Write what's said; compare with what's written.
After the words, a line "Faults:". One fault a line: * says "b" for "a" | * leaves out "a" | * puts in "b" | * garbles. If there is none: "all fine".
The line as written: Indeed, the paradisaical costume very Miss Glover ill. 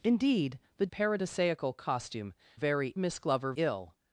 Indeed, the paradisaical costume very Miss Glover ill.
Faults:
all fine